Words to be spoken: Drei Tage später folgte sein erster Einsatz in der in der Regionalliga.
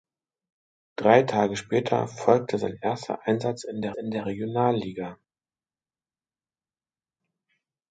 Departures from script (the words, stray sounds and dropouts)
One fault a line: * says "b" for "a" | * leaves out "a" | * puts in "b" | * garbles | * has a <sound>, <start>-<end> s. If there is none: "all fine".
all fine